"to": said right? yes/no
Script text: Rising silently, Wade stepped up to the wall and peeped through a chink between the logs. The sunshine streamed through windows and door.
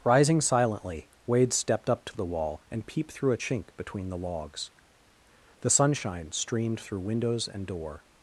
yes